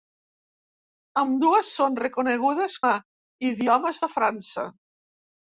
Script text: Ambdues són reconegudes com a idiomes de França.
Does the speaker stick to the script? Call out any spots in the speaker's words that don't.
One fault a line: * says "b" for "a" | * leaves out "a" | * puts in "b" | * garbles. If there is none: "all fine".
* leaves out "com"